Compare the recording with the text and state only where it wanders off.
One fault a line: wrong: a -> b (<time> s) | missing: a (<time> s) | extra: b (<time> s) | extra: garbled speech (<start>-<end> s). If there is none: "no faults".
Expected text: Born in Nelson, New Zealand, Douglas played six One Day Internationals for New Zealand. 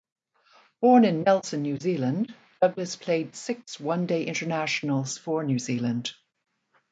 no faults